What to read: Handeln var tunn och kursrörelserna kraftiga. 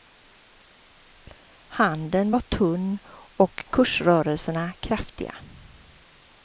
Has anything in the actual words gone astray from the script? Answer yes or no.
no